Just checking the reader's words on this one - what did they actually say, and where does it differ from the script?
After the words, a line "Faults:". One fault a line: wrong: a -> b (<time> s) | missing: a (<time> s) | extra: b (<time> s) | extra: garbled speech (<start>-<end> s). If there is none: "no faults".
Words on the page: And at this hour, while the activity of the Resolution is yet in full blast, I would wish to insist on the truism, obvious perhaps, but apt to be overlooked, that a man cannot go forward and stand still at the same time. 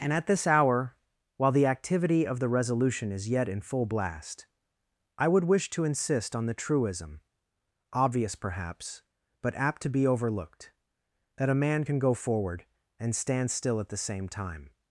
And at this hour, while the activity of the Resolution is yet in full blast, I would wish to insist on the truism, obvious perhaps, but apt to be overlooked, that a man can go forward and stand still at the same time.
Faults:
wrong: cannot -> can (11.8 s)